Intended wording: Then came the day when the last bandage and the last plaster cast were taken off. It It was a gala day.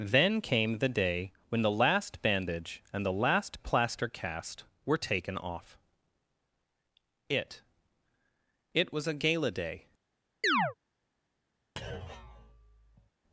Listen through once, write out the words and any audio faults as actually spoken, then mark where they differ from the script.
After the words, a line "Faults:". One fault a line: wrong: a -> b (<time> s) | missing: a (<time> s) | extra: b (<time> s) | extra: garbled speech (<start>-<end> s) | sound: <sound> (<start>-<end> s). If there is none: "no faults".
Then came the day when the last bandage and the last plaster cast were taken off. It It was a gala day.
Faults:
sound: chirp (10.4-10.7 s)
sound: thud (11.8-13.1 s)